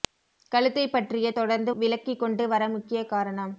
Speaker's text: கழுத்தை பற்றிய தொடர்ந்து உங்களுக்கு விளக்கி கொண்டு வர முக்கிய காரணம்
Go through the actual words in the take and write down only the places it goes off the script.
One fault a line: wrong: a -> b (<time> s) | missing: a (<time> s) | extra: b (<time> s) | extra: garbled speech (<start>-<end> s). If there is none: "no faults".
missing: உங்களுக்கு (1.7 s)